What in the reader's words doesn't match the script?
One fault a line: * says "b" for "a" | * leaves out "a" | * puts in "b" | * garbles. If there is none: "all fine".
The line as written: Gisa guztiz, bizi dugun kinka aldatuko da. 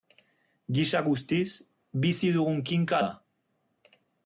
* leaves out "aldatuko"